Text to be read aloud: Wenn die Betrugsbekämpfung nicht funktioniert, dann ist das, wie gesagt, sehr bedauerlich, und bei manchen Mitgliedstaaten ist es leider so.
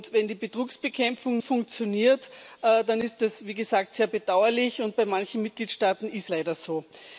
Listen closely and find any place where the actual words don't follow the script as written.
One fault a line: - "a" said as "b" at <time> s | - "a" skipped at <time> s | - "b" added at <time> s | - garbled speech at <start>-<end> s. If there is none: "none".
- "nicht" skipped at 1.4 s
- "es" skipped at 6.3 s